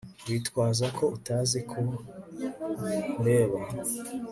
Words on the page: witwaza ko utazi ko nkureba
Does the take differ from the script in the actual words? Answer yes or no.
no